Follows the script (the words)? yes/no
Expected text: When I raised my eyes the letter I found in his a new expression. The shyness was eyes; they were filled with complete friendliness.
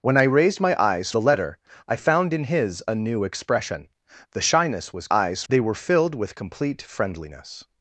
yes